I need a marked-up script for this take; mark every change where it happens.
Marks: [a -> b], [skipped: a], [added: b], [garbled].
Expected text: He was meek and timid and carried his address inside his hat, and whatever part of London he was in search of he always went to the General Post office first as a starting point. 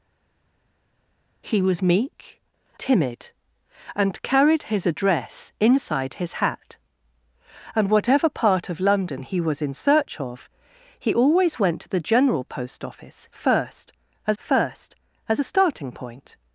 He was meek [skipped: and] timid and carried his address inside his hat, and whatever part of London he was in search of he always went to the General Post office first as [added: first as] a starting point.